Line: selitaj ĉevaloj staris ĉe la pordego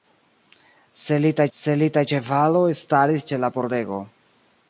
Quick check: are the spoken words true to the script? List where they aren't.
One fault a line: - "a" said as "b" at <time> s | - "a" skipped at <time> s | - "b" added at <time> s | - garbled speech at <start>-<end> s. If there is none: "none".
- "selitaj" added at 1.6 s